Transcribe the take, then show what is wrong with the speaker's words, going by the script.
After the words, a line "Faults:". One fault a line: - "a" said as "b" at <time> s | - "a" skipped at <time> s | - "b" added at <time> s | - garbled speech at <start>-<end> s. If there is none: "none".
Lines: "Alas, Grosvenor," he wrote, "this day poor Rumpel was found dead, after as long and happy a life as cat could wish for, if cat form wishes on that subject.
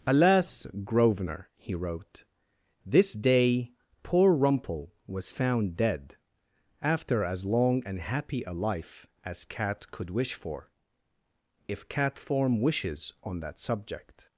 "Alas, Grosvenor," he wrote, "this day poor Rumpel was found dead, after as long and happy a life as cat could wish for, if cat form wishes on that subject.
Faults:
none